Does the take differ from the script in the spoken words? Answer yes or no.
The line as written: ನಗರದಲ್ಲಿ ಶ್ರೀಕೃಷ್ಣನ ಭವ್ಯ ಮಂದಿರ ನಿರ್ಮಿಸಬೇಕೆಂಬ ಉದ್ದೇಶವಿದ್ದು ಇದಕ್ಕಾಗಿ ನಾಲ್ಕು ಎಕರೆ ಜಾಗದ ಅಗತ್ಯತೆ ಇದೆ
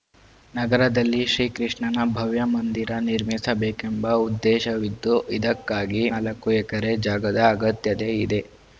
no